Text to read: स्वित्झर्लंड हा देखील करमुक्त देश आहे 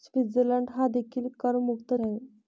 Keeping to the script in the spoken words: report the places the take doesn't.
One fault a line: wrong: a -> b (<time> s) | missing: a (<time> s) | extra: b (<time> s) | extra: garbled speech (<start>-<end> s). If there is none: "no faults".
missing: देश (1.9 s)